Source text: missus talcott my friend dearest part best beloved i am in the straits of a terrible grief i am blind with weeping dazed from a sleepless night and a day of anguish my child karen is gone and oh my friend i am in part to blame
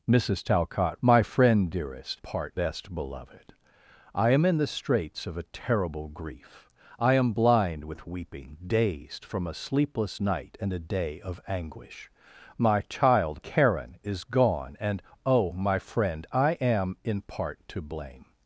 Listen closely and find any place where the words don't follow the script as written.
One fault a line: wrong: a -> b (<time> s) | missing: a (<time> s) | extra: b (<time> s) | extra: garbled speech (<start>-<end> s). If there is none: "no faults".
no faults